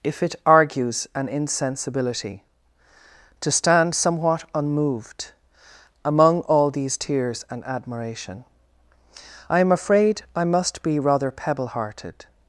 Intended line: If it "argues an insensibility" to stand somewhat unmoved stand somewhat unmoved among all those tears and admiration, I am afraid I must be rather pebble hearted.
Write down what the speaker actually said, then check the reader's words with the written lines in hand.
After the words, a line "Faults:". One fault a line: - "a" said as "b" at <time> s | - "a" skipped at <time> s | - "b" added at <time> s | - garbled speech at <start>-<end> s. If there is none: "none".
If it "argues an insensibility" to stand somewhat unmoved among all these tears and admiration, I am afraid I must be rather pebble hearted.
Faults:
- "stand somewhat unmoved" skipped at 5.3 s
- "those" said as "these" at 6.7 s